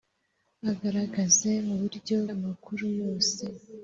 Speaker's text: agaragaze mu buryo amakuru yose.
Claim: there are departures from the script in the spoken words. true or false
false